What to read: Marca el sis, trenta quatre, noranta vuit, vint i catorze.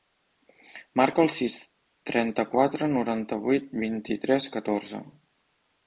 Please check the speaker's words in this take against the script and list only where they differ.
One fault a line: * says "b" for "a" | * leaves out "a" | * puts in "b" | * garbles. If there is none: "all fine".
* puts in "tres"